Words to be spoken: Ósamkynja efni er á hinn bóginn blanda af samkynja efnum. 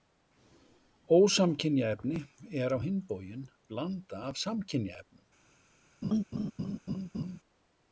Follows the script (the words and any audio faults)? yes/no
no